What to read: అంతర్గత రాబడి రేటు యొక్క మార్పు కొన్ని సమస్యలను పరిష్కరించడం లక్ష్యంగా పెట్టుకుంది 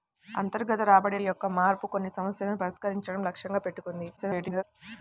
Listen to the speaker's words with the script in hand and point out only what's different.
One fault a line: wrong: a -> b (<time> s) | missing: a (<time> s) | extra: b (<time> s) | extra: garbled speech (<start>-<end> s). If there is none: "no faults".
missing: రేటు (1.2 s)
extra: garbled speech (4.2-4.6 s)